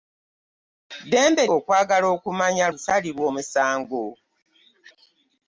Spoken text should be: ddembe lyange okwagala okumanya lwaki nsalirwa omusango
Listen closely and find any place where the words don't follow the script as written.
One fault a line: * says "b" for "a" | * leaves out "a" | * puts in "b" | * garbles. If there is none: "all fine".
* leaves out "lyange"
* leaves out "lwaki"